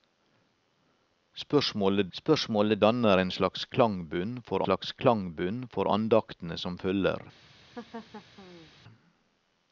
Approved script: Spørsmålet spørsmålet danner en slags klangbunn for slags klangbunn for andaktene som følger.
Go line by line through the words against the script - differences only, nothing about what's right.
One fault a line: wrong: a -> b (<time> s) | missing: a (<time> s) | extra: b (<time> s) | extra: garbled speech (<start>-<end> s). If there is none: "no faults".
no faults